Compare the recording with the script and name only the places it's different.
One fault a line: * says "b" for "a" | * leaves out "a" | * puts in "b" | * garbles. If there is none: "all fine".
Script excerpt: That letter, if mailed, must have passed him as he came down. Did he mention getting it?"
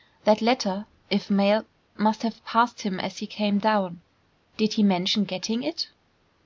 all fine